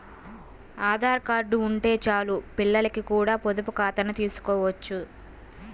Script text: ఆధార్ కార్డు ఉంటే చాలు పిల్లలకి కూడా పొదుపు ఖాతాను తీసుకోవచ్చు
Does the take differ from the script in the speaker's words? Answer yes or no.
no